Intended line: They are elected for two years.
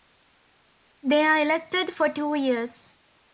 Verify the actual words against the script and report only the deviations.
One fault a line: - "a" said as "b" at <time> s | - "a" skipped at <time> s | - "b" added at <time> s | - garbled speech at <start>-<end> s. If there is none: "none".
none